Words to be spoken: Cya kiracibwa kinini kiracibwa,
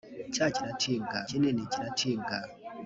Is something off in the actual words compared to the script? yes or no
no